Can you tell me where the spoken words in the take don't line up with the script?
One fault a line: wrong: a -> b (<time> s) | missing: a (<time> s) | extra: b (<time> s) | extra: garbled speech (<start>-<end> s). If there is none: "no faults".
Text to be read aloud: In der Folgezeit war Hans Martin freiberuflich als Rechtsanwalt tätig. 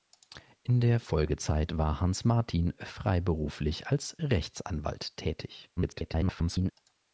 extra: garbled speech (5.8-6.7 s)